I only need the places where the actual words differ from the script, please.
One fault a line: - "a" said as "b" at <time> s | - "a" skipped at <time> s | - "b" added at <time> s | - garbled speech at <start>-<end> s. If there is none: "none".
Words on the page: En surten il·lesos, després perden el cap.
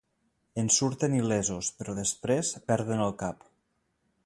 - "però" added at 1.8 s